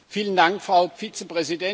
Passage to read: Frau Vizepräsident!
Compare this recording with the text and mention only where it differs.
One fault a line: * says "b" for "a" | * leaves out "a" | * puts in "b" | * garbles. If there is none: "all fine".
all fine